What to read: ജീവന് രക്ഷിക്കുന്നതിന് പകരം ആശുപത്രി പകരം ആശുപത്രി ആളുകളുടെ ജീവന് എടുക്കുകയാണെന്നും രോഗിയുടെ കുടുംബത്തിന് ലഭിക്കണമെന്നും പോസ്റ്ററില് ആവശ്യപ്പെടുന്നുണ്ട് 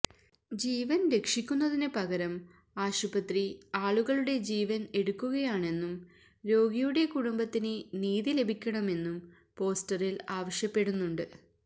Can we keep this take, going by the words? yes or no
no